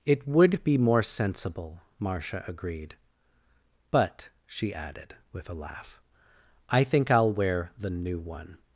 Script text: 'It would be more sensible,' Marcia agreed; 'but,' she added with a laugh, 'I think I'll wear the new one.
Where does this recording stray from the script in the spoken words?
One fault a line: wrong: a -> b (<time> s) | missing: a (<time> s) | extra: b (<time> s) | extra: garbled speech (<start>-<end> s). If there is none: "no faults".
no faults